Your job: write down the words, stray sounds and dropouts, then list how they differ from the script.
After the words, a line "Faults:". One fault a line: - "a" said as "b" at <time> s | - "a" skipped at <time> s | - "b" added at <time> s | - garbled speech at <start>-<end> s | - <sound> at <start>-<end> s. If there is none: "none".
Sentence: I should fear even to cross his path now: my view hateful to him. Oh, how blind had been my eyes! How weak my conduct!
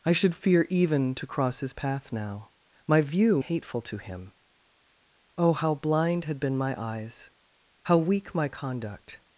I should fear even to cross his path now: my view hateful to him. Oh, how blind had been my eyes! How weak my conduct!
Faults:
none